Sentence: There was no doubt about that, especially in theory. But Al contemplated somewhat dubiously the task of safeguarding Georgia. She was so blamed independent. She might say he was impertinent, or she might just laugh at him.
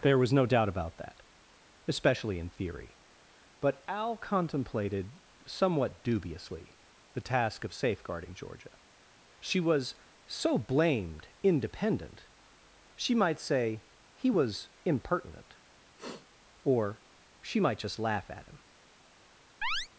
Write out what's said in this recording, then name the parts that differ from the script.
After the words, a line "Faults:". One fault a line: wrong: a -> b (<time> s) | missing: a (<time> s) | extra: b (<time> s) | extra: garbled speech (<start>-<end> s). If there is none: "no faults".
There was no doubt about that, especially in theory. But Al contemplated somewhat dubiously the task of safeguarding Georgia. She was so blamed independent. She might say he was impertinent, or she might just laugh at him.
Faults:
no faults